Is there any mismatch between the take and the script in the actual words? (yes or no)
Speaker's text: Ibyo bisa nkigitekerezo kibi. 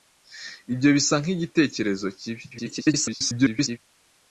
yes